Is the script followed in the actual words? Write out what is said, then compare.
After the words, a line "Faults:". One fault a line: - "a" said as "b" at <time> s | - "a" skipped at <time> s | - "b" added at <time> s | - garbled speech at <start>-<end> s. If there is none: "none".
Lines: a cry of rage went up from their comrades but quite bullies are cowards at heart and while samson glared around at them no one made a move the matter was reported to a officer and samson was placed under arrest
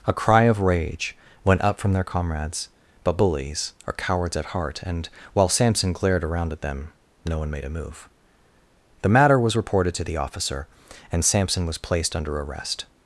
a cry of rage went up from their comrades but bullies are cowards at heart and while samson glared around at them no one made a move the matter was reported to the officer and samson was placed under arrest
Faults:
- "quite" skipped at 3.2 s
- "a" said as "the" at 10.0 s